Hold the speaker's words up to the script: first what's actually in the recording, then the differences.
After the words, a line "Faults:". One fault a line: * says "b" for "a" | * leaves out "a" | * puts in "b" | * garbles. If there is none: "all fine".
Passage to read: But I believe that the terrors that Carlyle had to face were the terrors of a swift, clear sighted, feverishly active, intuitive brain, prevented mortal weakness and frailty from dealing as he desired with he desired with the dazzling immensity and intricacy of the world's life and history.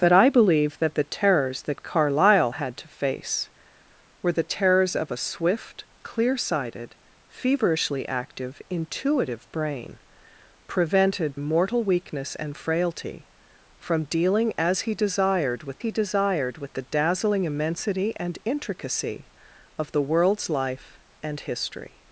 But I believe that the terrors that Carlyle had to face were the terrors of a swift, clear sighted, feverishly active, intuitive brain, prevented mortal weakness and frailty from dealing as he desired with he desired with the dazzling immensity and intricacy of the world's life and history.
Faults:
all fine